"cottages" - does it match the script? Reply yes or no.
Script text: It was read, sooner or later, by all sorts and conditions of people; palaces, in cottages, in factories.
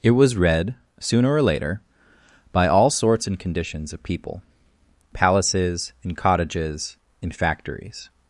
yes